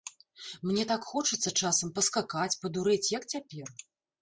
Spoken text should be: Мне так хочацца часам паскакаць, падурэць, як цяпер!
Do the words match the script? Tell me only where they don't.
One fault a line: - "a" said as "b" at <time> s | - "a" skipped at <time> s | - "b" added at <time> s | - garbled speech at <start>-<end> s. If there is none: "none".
none